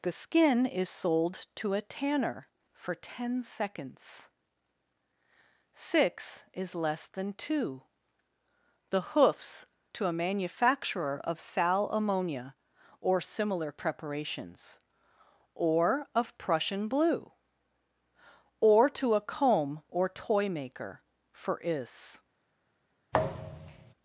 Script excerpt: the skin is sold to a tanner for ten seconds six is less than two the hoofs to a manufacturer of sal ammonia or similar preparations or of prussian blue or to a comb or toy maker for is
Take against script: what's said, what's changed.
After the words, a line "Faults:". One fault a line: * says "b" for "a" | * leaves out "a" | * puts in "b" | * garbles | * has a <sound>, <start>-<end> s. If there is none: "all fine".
the skin is sold to a tanner for ten seconds six is less than two the hoofs to a manufacturer of sal ammonia or similar preparations or of prussian blue or to a comb or toy maker for is
Faults:
* has a thud, 23.1-23.9 s